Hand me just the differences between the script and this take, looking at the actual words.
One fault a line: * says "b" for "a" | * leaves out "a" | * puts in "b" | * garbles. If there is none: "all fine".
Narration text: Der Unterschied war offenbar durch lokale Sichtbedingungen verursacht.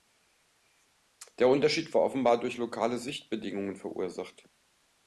all fine